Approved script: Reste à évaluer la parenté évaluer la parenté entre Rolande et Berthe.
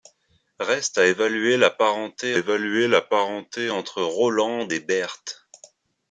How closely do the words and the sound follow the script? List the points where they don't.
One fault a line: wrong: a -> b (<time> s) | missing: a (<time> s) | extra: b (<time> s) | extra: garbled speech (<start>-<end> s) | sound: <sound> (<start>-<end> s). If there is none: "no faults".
no faults